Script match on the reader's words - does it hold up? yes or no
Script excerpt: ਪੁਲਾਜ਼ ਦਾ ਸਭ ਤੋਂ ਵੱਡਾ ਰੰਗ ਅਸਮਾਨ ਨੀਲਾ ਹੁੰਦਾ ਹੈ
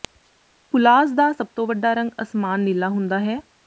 yes